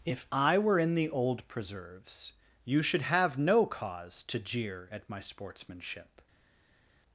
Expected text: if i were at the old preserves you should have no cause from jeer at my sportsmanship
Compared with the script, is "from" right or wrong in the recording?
wrong